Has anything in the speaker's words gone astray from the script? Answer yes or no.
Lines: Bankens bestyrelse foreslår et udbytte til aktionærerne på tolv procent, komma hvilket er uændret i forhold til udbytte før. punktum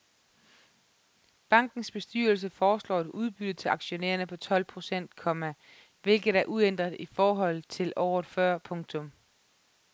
yes